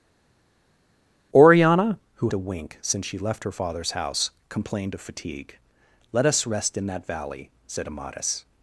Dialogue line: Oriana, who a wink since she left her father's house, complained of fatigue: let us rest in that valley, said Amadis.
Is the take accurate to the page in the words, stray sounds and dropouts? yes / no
yes